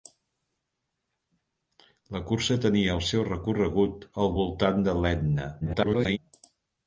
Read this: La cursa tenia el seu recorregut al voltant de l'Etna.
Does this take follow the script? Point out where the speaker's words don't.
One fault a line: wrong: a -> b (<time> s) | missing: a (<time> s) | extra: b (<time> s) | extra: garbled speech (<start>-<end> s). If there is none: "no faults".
extra: garbled speech (5.6-6.2 s)